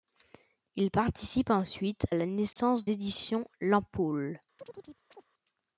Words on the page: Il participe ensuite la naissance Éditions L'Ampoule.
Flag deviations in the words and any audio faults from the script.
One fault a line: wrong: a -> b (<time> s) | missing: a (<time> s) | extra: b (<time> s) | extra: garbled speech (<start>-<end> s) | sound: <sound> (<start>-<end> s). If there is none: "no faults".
sound: dropout (2.5-2.6 s)
sound: chirp (4.6-5.3 s)